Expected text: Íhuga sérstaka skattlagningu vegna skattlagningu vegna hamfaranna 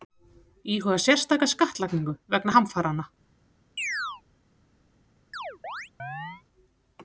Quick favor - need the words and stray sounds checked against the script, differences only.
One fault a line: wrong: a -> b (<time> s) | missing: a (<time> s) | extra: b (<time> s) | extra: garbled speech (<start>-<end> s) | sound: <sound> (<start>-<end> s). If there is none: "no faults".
missing: skattlagningu vegna (2.6 s)
sound: chirp (3.8-4.2 s)
sound: chirp (5.3-6.4 s)